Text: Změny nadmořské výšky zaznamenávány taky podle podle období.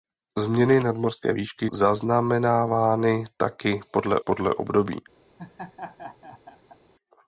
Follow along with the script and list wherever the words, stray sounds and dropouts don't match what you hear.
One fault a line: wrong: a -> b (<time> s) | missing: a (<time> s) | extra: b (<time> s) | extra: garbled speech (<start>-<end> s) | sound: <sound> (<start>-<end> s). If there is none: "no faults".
sound: laugh (5.4-6.8 s)